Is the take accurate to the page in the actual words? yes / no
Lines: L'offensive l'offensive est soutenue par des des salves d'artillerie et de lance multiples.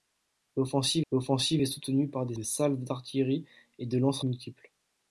yes